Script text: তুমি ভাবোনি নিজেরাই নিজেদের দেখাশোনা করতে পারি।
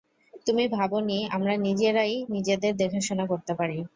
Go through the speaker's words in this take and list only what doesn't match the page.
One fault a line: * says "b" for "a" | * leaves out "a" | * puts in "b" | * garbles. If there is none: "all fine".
* puts in "আমরা"